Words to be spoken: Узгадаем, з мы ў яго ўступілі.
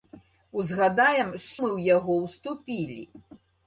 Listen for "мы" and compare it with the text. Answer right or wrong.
right